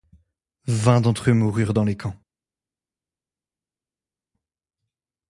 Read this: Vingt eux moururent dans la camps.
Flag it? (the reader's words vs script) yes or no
yes